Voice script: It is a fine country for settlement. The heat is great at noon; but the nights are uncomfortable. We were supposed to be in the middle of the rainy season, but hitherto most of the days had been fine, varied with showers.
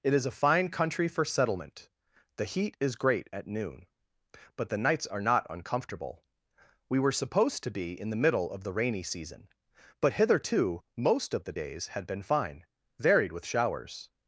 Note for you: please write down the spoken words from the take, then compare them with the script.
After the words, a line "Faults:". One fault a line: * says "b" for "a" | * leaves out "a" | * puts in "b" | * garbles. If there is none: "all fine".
It is a fine country for settlement. The heat is great at noon; but the nights are not uncomfortable. We were supposed to be in the middle of the rainy season, but hitherto most of the days had been fine, varied with showers.
Faults:
* puts in "not"